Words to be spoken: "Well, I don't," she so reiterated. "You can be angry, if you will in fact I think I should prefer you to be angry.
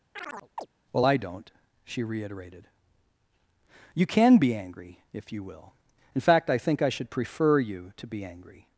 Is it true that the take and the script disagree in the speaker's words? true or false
true